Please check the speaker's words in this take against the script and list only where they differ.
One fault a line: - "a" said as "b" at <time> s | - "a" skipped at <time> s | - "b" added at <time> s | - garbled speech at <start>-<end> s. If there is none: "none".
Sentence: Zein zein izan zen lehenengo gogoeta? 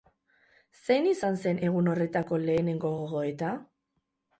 - "zein" skipped at 1.1 s
- "egun horretako" added at 1.7 s